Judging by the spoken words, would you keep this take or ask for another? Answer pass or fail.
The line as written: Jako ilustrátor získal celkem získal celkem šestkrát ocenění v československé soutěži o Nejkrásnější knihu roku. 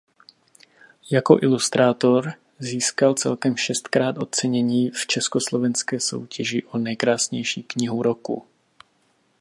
fail